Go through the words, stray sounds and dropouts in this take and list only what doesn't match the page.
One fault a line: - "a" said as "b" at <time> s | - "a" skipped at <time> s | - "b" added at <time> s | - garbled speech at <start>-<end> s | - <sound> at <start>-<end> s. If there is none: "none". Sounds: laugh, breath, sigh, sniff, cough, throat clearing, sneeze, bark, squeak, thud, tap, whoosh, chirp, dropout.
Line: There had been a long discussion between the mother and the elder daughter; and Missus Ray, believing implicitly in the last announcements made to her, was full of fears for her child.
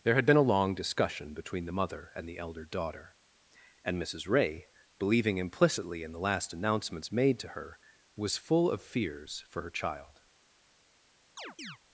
- chirp at 11.4-11.8 s